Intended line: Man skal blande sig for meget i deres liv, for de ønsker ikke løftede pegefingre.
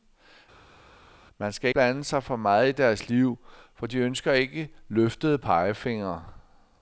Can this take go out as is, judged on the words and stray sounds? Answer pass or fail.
pass